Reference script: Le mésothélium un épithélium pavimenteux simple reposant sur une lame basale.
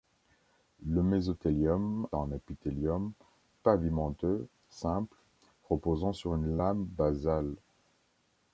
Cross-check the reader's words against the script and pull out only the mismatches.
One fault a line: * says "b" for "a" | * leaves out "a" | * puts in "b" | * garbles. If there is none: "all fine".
all fine